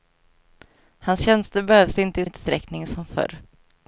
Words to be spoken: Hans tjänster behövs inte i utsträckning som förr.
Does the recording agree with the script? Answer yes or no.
yes